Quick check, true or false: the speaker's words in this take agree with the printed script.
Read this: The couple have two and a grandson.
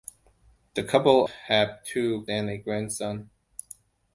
true